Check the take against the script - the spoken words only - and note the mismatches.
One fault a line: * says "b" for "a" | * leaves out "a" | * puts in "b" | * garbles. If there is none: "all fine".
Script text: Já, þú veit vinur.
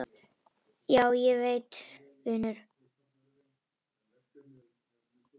* says "ég" for "þú"